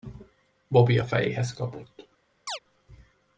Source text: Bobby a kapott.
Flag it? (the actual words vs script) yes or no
yes